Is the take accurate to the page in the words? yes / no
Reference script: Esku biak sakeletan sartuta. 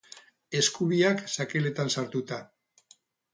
yes